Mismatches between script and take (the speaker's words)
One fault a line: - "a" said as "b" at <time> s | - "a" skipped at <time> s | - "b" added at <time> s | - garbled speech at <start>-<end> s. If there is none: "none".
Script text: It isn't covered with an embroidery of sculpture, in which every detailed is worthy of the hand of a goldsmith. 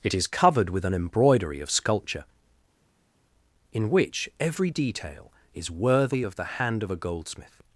- "isn't" said as "is" at 0.1 s
- "detailed" said as "detail" at 4.7 s